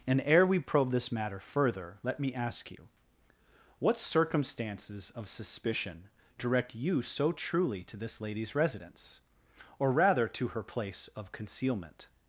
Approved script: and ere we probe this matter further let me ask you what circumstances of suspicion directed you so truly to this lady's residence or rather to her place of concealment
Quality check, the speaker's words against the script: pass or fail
fail